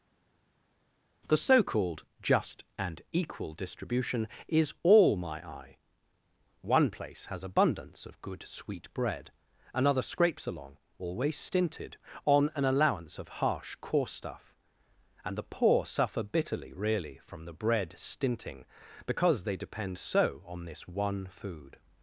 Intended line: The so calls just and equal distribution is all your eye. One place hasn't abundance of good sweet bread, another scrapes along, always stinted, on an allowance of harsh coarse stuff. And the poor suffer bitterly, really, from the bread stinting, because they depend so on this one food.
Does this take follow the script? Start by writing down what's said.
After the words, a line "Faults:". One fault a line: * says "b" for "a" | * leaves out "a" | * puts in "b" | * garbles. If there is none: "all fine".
The so called just and equal distribution is all my eye. One place has abundance of good sweet bread, another scrapes along, always stinted, on an allowance of harsh coarse stuff. And the poor suffer bitterly, really, from the bread stinting, because they depend so on this one food.
Faults:
* says "called" for "calls"
* says "my" for "your"
* says "has" for "hasn't"